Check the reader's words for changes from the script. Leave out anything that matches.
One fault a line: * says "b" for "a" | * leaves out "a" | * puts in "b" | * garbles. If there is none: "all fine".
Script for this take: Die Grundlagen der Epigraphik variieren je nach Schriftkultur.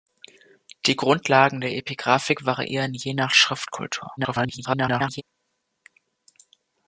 * garbles